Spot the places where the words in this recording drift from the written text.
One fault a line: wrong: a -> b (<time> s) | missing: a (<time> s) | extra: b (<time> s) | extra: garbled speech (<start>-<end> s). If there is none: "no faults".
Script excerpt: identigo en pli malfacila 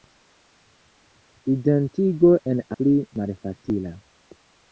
no faults